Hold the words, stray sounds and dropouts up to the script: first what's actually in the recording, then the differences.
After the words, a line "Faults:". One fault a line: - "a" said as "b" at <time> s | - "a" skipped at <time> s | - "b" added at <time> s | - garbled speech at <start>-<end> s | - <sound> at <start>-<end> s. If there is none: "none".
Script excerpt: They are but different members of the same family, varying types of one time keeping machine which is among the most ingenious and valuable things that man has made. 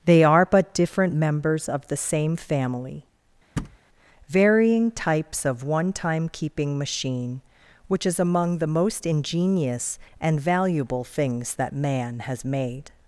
They are but different members of the same family, varying types of one time keeping machine which is among the most ingenious and valuable things that man has made.
Faults:
- thud at 3.6-3.8 s